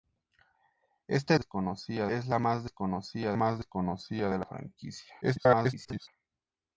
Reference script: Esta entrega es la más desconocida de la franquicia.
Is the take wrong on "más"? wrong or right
right